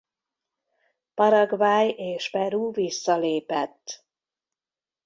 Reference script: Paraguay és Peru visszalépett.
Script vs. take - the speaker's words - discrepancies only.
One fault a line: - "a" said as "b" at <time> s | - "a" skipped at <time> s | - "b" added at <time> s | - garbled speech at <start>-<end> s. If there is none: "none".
none